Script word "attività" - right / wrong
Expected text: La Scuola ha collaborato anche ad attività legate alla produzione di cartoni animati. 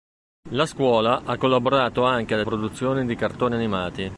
wrong